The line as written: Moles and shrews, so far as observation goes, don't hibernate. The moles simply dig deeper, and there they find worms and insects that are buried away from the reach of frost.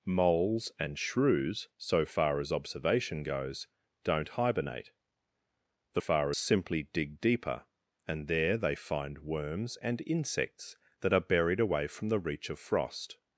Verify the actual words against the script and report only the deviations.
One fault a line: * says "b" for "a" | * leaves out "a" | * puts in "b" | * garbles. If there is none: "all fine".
* says "far" for "moles"